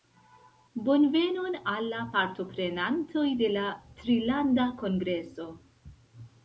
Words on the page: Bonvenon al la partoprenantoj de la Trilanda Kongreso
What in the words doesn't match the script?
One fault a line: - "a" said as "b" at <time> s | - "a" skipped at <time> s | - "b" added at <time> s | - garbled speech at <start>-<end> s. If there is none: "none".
none